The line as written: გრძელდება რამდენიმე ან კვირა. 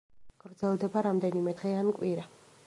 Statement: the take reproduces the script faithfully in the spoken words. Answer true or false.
false